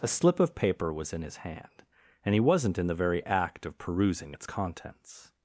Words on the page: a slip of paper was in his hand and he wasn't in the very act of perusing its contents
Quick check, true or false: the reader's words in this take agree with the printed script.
true